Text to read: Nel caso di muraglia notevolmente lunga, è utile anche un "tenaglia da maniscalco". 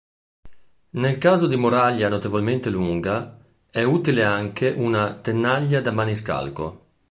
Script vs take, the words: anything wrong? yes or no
yes